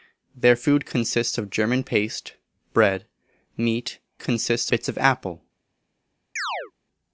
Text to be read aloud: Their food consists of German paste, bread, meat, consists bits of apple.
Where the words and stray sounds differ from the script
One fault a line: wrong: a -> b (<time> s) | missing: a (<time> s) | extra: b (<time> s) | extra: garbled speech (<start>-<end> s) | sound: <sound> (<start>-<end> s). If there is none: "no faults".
sound: chirp (6.4-6.7 s)